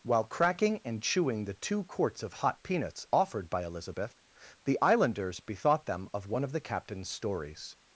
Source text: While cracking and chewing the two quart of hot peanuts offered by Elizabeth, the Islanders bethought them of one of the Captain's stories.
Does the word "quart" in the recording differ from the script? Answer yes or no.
yes